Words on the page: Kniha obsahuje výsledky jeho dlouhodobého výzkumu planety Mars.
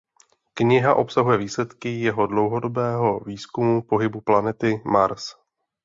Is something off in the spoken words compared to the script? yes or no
yes